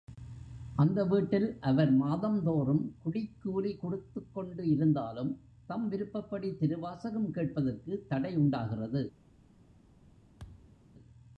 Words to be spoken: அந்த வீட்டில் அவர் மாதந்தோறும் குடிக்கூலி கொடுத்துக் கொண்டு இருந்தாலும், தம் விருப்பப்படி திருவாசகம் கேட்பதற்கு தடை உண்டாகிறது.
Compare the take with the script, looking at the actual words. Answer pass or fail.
pass